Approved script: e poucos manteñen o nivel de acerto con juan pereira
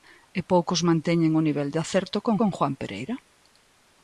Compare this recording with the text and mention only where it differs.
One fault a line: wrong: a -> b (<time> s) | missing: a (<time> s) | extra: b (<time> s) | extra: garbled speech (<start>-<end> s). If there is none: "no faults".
extra: con (2.4 s)